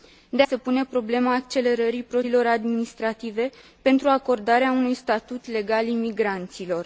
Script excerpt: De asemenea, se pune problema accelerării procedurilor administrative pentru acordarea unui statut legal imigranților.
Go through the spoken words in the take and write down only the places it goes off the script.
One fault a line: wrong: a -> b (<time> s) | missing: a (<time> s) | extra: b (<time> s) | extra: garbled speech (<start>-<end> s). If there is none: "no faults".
missing: asemenea (0.4 s)